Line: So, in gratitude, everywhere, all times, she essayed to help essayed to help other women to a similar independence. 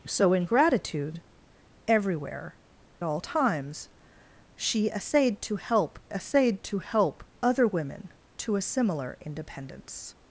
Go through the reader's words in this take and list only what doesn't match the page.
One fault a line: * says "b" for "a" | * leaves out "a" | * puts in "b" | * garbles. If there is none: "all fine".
all fine